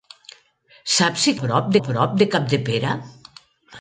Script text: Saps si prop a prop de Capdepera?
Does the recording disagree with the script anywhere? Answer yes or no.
no